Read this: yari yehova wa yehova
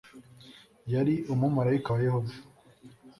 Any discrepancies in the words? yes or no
yes